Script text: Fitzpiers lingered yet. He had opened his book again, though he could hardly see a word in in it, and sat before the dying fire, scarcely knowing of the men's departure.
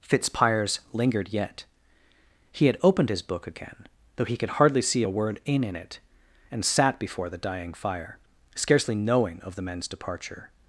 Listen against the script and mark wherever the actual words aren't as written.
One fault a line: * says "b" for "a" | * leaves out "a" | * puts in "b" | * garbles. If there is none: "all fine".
all fine